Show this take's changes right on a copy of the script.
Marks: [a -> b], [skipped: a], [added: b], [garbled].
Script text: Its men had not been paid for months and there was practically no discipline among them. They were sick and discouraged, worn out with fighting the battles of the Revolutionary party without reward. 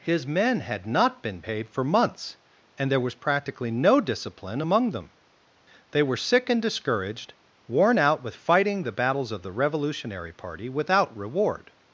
[Its -> His] men had not been paid for months and there was practically no discipline among them. They were sick and discouraged, worn out with fighting the battles of the Revolutionary party without reward.